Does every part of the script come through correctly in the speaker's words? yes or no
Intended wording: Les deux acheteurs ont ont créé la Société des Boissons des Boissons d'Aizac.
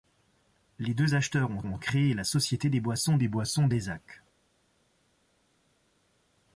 yes